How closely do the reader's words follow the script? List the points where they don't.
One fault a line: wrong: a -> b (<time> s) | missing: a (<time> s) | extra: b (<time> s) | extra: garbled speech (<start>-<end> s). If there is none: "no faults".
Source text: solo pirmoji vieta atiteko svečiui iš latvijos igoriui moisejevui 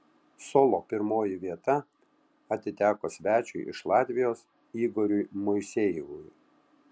no faults